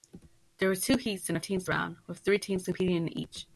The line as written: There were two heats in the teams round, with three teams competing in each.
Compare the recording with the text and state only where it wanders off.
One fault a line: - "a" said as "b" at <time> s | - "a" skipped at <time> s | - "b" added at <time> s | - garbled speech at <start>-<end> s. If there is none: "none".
none